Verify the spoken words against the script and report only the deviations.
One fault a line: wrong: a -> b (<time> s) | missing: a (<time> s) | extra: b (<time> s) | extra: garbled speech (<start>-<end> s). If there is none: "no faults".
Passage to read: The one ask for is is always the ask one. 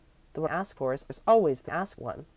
no faults